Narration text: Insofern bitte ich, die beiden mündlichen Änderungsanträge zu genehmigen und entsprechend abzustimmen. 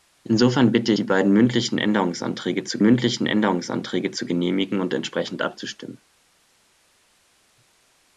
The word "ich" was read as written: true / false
false